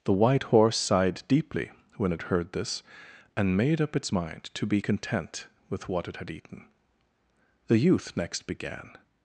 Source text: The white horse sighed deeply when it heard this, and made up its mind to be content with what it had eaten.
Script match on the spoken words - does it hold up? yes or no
no